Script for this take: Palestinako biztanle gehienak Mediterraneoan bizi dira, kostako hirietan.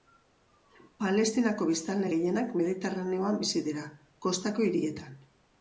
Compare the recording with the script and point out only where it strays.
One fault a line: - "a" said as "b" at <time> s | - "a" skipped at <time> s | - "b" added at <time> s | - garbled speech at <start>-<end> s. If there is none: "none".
none